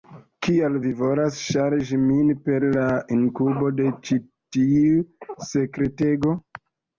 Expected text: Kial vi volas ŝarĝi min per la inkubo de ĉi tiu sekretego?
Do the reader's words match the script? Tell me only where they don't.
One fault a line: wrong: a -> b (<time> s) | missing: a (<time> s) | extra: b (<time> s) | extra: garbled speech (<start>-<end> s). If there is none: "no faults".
no faults